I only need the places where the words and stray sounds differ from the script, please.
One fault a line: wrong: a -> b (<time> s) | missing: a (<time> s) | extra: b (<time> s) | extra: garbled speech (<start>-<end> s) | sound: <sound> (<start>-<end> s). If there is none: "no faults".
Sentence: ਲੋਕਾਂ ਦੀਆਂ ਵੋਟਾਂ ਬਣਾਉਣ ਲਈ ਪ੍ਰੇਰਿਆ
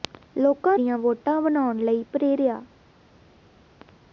no faults